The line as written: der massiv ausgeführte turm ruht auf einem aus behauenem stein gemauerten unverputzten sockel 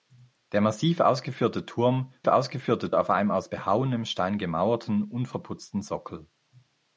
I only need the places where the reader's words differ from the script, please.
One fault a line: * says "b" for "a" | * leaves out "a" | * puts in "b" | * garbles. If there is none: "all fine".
* says "ausgeführte" for "ruht"